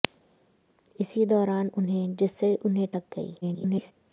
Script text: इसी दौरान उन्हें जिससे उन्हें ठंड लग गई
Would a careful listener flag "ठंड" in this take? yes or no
yes